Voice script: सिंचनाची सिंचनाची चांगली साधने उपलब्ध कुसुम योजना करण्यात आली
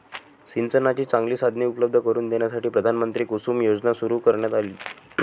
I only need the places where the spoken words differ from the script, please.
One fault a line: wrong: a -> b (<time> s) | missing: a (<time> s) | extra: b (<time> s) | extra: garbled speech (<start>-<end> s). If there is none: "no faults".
missing: सिंचनाची (1.0 s)
extra: करून देण्यासाठी प्रधानमंत्री (2.0 s)
extra: सुरू (3.9 s)